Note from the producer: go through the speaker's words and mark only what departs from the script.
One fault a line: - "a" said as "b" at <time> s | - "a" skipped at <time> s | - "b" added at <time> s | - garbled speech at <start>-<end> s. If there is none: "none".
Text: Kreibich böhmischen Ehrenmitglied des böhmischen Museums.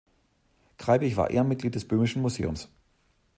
- "böhmischen" said as "war" at 1.1 s